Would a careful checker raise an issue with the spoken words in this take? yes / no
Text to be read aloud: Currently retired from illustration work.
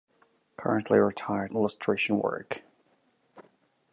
yes